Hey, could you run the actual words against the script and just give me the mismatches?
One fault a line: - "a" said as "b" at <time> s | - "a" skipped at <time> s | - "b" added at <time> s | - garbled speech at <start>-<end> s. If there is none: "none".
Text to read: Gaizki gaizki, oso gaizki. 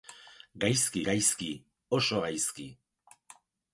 none